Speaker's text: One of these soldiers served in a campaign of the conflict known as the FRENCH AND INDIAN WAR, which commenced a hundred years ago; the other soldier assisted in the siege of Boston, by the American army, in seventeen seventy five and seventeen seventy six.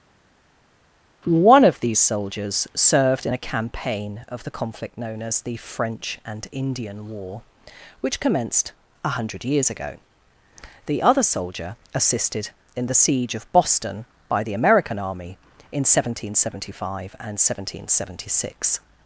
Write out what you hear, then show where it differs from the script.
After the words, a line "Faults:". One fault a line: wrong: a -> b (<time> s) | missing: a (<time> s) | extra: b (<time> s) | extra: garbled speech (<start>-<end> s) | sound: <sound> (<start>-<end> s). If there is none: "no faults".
One of these soldiers served in a campaign of the conflict known as the FRENCH AND INDIAN WAR, which commenced a hundred years ago; the other soldier assisted in the siege of Boston, by the American army, in seventeen seventy five and seventeen seventy six.
Faults:
no faults